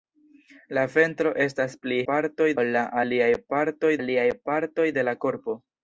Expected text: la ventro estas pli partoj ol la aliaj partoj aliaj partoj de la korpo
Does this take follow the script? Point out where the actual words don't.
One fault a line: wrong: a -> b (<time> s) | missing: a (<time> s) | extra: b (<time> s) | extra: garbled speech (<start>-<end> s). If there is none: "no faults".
no faults